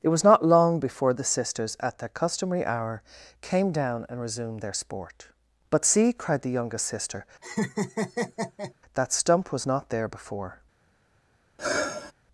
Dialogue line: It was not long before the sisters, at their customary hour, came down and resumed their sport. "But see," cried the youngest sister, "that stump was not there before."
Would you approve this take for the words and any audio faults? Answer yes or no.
no